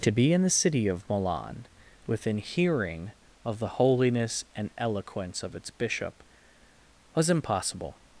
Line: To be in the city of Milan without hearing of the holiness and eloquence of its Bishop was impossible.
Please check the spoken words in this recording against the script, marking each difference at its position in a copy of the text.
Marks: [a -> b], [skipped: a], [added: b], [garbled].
To be in the city of Milan [without -> within] hearing of the holiness and eloquence of its Bishop was impossible.